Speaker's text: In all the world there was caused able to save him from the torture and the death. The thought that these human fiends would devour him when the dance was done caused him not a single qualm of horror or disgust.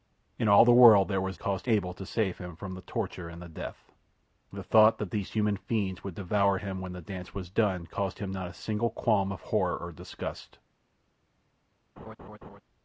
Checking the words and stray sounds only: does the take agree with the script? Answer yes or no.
no